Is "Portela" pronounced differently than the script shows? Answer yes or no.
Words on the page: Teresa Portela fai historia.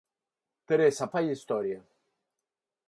yes